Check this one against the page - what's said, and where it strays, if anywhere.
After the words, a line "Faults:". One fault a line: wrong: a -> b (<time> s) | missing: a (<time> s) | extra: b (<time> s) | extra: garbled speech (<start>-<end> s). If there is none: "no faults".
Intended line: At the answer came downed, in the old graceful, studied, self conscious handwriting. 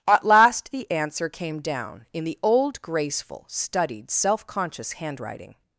At last the answer came down, in the old graceful, studied, self conscious handwriting.
Faults:
extra: last (0.2 s)
wrong: downed -> down (1.6 s)